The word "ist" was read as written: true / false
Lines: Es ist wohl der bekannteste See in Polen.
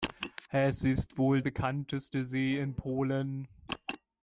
true